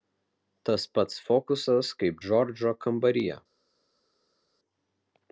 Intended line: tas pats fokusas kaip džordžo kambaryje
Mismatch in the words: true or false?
false